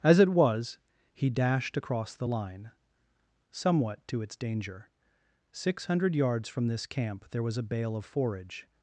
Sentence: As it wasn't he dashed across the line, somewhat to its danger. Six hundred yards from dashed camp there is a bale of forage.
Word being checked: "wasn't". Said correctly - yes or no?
no